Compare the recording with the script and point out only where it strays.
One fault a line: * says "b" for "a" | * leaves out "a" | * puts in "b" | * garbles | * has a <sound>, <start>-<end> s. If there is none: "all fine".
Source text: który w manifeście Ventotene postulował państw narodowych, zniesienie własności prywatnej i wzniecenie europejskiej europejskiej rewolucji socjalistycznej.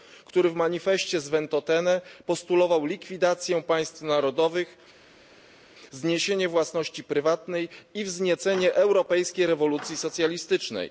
* puts in "z"
* puts in "likwidację"
* leaves out "europejskiej"